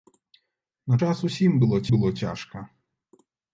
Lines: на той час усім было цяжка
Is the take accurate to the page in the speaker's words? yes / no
no